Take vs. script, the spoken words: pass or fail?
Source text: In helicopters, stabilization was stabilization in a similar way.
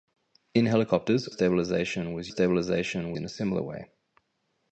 pass